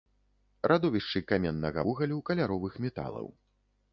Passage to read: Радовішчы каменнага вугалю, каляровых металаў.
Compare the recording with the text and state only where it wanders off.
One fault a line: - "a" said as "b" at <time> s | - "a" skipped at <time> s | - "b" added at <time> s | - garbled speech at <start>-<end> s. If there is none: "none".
none